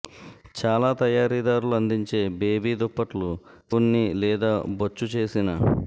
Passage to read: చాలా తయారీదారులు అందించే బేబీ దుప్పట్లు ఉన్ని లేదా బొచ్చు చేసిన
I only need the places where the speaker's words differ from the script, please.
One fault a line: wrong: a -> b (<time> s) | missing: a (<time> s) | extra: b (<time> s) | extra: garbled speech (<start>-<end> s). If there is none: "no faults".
no faults